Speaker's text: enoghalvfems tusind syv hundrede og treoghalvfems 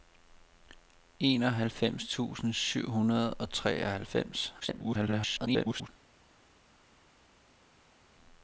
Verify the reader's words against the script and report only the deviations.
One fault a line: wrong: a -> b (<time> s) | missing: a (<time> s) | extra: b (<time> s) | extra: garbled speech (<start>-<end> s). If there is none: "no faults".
extra: garbled speech (4.6-5.9 s)